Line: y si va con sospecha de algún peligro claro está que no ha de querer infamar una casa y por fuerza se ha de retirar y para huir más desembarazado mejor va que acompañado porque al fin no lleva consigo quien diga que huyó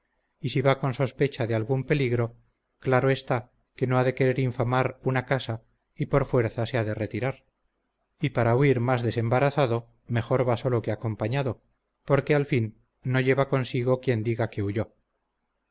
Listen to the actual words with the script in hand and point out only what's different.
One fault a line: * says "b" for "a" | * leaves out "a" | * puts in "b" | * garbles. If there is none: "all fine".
* puts in "solo"